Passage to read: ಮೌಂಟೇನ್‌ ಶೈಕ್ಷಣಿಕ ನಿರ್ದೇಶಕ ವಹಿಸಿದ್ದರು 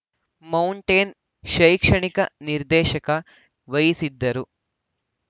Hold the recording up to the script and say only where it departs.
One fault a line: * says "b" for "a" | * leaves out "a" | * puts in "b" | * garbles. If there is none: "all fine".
all fine